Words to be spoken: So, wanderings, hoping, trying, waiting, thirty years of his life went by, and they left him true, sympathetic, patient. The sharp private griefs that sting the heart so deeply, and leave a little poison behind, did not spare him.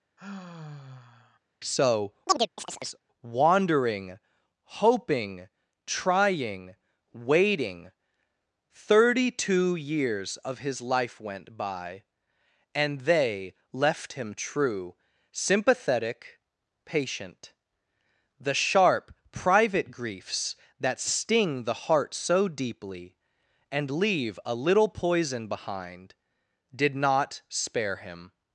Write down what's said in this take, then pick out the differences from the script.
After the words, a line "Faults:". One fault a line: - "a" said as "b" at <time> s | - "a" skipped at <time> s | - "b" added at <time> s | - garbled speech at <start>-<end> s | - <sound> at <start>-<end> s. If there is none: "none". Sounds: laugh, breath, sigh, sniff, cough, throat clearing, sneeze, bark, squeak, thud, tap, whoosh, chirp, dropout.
So, wandering, hoping, trying, waiting, thirty two years of his life went by, and they left him true, sympathetic, patient. The sharp private griefs that sting the heart so deeply, and leave a little poison behind, did not spare him.
Faults:
- sigh at 0.2-1.4 s
- chirp at 2.3-3.0 s
- "wanderings" said as "wandering" at 3.2 s
- "two" added at 9.3 s